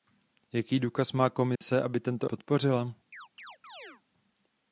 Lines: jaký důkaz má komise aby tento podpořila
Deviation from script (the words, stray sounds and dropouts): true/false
true